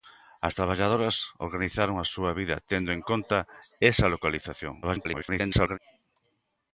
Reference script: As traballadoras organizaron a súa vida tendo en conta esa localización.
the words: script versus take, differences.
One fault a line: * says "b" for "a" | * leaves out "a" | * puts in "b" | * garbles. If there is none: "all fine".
* garbles